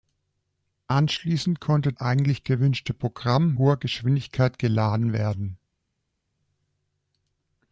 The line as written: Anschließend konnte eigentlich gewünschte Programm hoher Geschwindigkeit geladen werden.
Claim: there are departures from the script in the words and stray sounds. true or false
false